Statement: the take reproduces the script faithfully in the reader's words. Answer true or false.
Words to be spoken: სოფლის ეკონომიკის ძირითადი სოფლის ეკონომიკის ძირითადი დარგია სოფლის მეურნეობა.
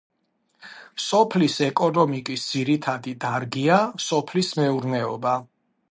false